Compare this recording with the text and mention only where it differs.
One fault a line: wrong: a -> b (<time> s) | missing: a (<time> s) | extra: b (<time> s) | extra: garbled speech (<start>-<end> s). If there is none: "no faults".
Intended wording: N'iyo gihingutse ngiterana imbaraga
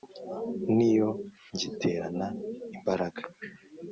missing: gihingutse (1.1 s)